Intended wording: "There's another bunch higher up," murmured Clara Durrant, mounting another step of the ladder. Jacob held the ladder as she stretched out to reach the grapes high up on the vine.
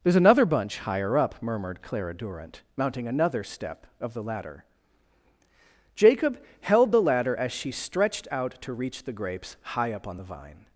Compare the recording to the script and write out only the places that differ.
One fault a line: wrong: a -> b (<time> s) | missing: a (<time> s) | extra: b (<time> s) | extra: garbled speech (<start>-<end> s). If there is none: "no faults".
no faults